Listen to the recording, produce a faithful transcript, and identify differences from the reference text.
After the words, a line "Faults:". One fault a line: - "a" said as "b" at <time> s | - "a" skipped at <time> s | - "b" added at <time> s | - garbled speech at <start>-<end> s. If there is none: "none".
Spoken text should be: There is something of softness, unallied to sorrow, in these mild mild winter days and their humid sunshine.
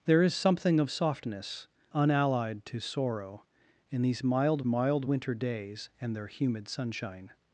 There is something of softness, unallied to sorrow, in these mild mild winter days and their humid sunshine.
Faults:
none